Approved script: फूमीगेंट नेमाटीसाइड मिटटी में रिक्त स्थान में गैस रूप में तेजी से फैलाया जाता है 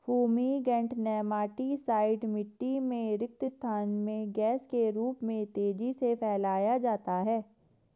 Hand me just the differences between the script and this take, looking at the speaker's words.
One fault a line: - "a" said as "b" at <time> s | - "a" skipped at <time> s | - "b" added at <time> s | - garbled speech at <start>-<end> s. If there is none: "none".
- "के" added at 4.7 s